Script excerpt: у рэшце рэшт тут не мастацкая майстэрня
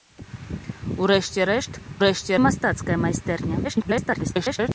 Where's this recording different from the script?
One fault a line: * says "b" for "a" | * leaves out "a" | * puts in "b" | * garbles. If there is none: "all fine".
* says "рэшце" for "тут"
* garbles